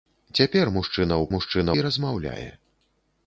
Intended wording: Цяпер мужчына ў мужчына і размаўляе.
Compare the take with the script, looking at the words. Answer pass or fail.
pass